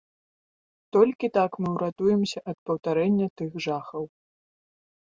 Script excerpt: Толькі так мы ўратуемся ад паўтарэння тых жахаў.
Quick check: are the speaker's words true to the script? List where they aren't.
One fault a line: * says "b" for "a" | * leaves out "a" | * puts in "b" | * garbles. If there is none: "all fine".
all fine